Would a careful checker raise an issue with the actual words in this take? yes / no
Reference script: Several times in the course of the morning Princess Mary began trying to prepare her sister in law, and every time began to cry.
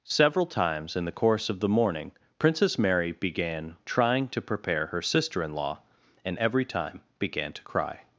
no